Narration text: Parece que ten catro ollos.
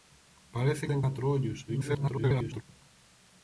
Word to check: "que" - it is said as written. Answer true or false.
false